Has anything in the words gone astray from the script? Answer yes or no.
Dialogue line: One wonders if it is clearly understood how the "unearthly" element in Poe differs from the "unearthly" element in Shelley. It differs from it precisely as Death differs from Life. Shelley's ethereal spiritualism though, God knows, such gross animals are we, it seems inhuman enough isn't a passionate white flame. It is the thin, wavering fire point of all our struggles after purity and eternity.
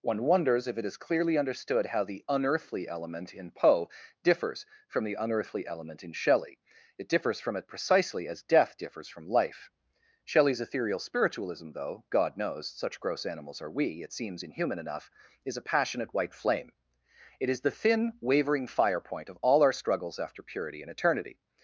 yes